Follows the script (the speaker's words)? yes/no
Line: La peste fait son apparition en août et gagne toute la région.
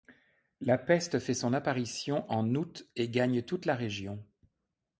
yes